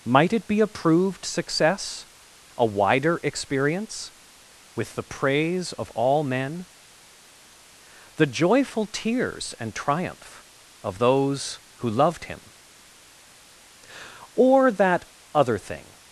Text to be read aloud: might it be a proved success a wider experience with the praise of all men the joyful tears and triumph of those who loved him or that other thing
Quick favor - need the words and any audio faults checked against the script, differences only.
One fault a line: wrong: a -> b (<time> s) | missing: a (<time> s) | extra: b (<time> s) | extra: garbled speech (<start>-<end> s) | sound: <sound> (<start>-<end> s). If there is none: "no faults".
no faults